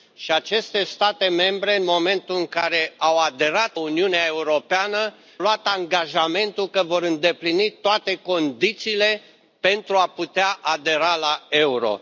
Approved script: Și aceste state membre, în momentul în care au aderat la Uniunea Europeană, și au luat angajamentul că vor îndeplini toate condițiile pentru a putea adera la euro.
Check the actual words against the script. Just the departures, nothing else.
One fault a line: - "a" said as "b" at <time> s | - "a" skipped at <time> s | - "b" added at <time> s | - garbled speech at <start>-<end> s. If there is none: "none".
- "la" skipped at 3.8 s
- "și au" skipped at 5.1 s